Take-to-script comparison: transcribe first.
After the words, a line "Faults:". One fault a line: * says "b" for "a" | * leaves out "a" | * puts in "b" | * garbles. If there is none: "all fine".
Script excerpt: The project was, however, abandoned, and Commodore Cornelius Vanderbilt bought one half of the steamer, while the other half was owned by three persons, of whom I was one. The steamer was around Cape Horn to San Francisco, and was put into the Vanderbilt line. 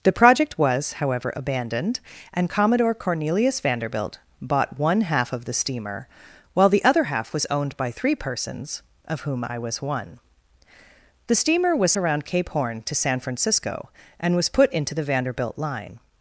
The project was, however, abandoned, and Commodore Cornelius Vanderbilt bought one half of the steamer, while the other half was owned by three persons, of whom I was one. The steamer was around Cape Horn to San Francisco, and was put into the Vanderbilt line.
Faults:
all fine